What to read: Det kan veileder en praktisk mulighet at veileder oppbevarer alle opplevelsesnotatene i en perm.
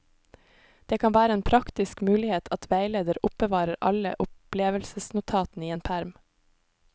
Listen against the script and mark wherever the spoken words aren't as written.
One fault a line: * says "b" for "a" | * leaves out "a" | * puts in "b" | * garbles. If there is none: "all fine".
* says "være" for "veileder"